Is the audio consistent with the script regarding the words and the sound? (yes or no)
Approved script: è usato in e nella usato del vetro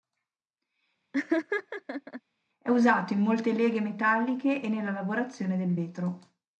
no